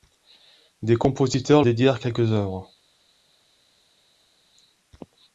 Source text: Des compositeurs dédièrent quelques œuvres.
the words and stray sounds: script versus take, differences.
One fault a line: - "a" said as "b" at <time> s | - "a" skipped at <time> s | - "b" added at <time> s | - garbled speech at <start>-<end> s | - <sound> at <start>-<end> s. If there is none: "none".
none